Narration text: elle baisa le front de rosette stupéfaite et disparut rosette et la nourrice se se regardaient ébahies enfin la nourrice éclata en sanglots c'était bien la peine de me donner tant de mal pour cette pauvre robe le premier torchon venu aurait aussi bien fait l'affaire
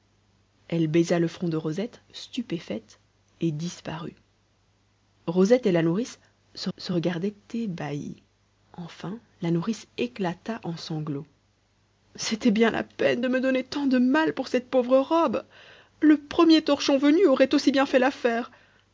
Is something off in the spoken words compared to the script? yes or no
no